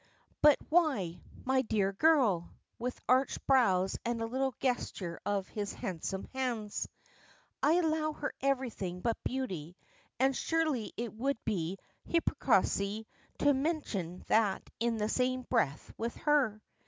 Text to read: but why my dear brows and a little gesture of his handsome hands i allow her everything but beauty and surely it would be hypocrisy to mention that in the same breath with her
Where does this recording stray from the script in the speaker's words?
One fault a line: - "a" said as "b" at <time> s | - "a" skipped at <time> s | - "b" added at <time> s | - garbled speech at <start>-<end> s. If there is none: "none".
- "girl with arched" added at 1.9 s